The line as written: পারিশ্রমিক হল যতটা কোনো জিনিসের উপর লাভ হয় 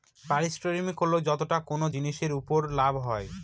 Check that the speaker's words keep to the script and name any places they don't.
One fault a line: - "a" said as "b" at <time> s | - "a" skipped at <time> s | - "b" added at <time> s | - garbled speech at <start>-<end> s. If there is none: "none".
none